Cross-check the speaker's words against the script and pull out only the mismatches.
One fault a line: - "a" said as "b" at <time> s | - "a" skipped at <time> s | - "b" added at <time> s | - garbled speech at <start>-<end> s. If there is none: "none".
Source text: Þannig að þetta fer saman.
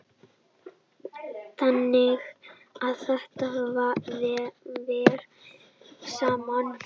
none